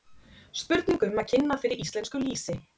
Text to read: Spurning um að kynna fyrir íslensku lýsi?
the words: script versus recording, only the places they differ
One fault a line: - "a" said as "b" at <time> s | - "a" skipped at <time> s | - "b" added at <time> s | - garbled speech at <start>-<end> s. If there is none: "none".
none